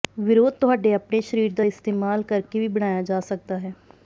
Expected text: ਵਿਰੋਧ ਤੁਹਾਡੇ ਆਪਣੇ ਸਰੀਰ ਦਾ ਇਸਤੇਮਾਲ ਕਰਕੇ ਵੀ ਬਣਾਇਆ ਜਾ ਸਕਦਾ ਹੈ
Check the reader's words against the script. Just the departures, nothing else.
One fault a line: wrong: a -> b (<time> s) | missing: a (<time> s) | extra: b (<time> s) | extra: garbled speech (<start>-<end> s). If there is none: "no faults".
no faults